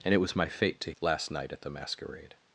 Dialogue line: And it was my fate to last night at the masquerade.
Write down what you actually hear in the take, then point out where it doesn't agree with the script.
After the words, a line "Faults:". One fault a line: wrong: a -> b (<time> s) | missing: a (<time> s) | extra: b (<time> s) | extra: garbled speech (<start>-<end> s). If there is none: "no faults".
And it was my fate to last night at the masquerade.
Faults:
no faults